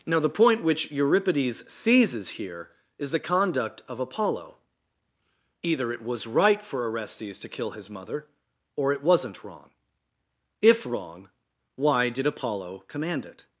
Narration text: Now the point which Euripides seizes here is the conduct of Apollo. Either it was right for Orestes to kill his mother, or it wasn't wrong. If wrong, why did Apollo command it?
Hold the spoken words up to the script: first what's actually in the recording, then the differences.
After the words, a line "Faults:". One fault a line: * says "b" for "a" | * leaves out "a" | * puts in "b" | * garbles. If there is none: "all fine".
Now the point which Euripides seizes here is the conduct of Apollo. Either it was right for Orestes to kill his mother, or it wasn't wrong. If wrong, why did Apollo command it?
Faults:
all fine